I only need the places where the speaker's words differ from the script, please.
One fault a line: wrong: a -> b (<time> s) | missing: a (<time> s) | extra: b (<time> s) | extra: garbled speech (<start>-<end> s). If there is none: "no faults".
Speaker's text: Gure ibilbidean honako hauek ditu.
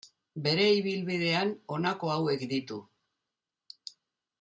wrong: Gure -> Bere (0.5 s)